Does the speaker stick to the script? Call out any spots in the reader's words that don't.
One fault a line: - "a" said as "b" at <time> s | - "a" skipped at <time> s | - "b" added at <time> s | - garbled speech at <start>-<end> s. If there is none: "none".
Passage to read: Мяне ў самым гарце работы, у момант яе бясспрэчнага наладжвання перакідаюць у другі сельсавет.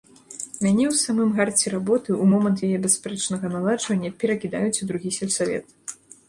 none